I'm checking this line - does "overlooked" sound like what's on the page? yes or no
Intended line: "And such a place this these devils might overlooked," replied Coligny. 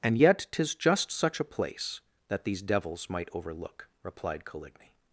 no